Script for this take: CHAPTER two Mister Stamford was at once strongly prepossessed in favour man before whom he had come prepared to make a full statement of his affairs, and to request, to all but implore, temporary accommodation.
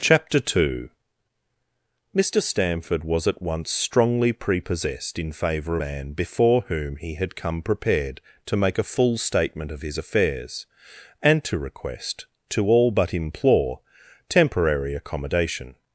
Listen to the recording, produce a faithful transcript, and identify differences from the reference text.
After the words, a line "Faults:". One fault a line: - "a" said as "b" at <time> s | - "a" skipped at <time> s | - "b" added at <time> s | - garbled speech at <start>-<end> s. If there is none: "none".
CHAPTER two Mister Stamford was at once strongly prepossessed in favour man before whom he had come prepared to make a full statement of his affairs, and to request, to all but implore, temporary accommodation.
Faults:
none